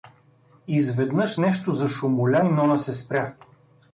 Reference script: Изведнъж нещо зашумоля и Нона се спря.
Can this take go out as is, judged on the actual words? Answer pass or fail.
pass